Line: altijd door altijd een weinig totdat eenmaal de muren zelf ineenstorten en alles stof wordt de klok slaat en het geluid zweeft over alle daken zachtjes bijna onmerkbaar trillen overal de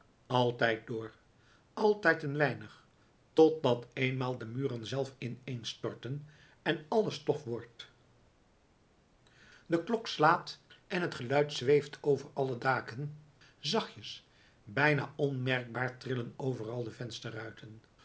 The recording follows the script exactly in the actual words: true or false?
true